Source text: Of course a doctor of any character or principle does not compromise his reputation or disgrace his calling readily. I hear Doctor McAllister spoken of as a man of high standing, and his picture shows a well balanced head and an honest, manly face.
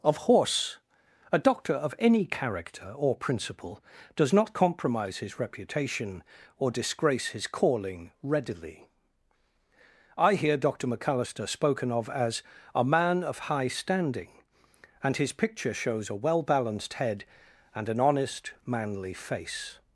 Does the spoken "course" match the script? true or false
false